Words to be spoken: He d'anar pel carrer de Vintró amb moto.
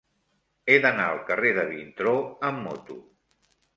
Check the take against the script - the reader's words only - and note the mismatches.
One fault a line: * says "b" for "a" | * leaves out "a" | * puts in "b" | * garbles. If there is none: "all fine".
* says "al" for "pel"